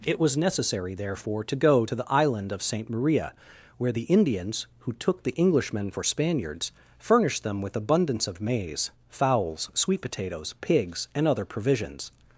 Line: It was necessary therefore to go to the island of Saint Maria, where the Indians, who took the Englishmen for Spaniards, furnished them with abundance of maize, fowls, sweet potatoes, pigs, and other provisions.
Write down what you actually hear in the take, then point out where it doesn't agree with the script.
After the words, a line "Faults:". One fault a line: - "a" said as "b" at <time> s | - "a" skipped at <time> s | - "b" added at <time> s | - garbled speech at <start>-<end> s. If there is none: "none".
It was necessary therefore to go to the island of Saint Maria, where the Indians, who took the Englishmen for Spaniards, furnished them with abundance of maize, fowls, sweet potatoes, pigs, and other provisions.
Faults:
none